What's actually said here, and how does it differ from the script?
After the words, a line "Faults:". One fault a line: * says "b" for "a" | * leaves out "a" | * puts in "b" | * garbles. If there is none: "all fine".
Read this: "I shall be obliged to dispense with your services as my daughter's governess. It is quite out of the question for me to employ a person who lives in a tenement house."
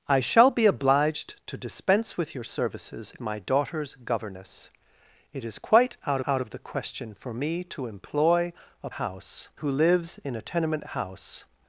"I shall be obliged to dispense with your services my daughter's governess. It is quite out out of the question for me to employ a house who lives in a tenement house."
Faults:
* leaves out "as"
* puts in "out"
* says "house" for "person"